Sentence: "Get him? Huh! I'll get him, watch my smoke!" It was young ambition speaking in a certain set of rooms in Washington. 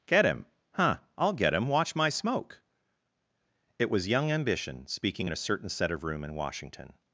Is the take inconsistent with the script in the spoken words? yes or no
yes